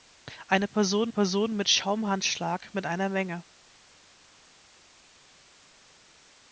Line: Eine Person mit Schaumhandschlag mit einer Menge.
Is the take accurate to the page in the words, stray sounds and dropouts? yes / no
no